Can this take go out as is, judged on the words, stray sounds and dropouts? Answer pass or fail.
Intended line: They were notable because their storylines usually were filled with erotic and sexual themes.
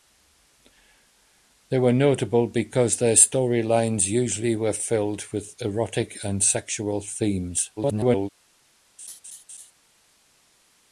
fail